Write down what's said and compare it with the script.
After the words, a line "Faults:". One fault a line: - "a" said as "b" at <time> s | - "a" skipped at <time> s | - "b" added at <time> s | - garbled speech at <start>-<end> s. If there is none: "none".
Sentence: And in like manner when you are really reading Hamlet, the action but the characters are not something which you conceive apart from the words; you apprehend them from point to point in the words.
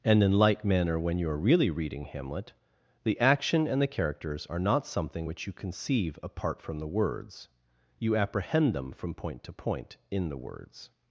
And in like manner when you are really reading Hamlet, the action and the characters are not something which you conceive apart from the words; you apprehend them from point to point in the words.
Faults:
- "but" said as "and" at 3.7 s